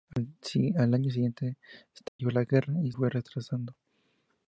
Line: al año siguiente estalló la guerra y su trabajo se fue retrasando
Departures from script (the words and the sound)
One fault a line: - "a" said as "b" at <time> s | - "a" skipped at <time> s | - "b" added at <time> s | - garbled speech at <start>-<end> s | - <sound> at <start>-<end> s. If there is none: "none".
- dropout at 2.1-2.2 s
- "su trabajo se" skipped at 2.9 s